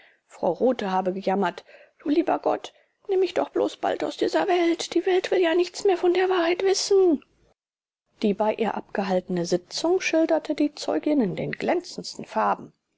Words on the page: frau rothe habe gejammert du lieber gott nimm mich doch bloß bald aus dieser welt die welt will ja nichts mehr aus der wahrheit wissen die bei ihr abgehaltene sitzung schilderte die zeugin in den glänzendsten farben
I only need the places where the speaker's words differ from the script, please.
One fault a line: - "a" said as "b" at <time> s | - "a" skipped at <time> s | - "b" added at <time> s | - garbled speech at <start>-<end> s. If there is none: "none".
- "aus" said as "von" at 6.0 s